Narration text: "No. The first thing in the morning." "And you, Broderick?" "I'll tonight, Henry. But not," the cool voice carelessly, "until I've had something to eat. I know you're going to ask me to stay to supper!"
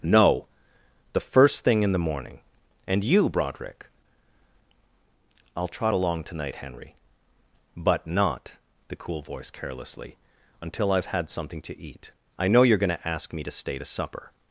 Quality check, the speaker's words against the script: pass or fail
fail